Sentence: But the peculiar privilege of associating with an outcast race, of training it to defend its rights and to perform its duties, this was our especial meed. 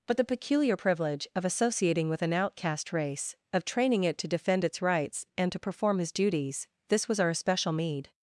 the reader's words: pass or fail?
fail